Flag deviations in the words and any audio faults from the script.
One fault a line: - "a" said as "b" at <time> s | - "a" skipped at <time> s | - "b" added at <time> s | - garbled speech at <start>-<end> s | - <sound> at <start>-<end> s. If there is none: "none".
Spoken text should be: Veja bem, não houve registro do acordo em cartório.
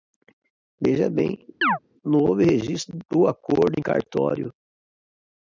- chirp at 1.6-1.8 s